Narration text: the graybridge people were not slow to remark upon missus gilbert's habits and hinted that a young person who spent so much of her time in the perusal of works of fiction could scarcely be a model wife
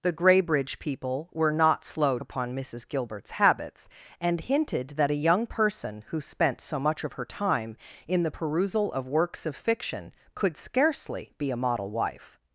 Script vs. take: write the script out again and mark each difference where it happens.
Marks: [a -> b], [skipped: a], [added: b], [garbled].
the graybridge people were not slow [skipped: to remark] upon missus gilbert's habits and hinted that a young person who spent so much of her time in the perusal of works of fiction could scarcely be a model wife